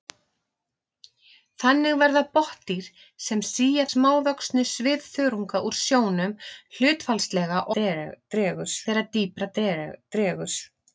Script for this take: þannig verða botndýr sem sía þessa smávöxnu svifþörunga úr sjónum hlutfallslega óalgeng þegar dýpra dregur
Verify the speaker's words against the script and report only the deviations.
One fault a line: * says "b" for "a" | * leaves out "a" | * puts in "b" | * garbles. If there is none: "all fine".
* leaves out "þessa"
* says "dregur" for "óalgeng"